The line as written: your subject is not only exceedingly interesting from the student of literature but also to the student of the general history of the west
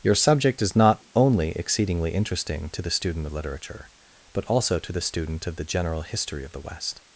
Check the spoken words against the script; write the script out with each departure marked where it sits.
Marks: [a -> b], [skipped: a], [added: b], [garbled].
your subject is not only exceedingly interesting [from -> to] the student of literature but also to the student of the general history of the west